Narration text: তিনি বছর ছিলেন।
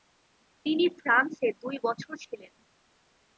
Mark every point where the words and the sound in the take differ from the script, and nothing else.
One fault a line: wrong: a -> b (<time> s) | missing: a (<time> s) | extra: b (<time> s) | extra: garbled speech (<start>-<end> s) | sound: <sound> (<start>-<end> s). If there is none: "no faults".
extra: ফ্রান্সে দুই (1.0 s)